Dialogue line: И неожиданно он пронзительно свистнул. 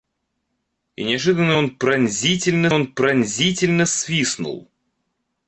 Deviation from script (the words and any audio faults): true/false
true